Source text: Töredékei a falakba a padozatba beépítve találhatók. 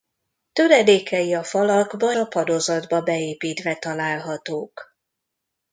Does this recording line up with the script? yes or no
yes